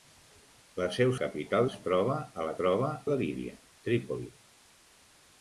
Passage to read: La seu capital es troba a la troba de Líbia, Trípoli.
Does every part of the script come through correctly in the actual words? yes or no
yes